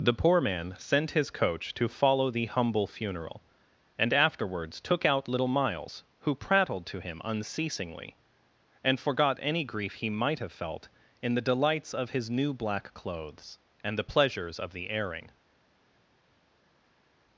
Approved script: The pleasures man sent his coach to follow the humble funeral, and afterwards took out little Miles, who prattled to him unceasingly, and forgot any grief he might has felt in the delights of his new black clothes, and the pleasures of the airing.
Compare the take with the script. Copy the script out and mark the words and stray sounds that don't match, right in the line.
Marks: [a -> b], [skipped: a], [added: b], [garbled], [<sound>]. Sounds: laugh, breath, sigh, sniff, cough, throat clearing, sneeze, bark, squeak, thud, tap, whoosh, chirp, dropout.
The [pleasures -> poor] man sent his coach to follow the humble funeral, and afterwards took out little Miles, who prattled to him unceasingly, and forgot any grief he might [has -> have] felt in the delights of his new black clothes, and the pleasures of the airing.